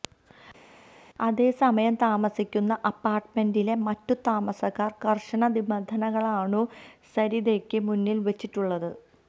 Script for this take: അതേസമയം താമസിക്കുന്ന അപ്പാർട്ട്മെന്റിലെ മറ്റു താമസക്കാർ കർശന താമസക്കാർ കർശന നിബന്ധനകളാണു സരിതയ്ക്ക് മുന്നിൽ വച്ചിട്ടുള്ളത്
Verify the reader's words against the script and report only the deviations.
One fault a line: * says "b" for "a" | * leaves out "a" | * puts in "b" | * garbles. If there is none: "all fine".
* leaves out "താമസക്കാർ കർശന"